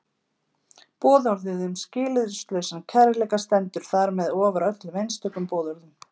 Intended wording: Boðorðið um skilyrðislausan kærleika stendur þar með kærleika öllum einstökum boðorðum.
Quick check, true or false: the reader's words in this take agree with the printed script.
false